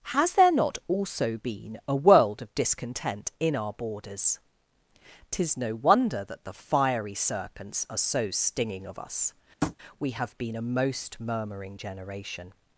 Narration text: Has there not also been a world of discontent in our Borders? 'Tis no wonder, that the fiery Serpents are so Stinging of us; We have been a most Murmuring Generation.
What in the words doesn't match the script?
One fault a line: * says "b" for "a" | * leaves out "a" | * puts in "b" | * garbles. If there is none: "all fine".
all fine